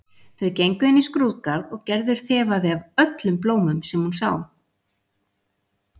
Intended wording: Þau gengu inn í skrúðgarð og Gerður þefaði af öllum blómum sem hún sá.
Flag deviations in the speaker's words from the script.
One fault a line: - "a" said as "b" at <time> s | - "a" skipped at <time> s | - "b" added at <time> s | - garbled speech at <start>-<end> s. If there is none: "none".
none